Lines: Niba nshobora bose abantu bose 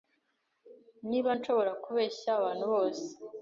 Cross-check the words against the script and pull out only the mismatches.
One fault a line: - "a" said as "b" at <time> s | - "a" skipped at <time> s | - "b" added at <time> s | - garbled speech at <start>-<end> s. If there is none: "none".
- "bose" said as "kubeshya" at 1.8 s